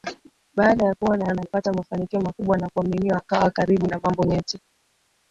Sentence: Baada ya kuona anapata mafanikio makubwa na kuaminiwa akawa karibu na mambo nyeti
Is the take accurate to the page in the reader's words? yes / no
yes